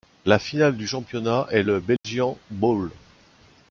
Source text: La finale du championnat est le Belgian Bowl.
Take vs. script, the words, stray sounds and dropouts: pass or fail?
fail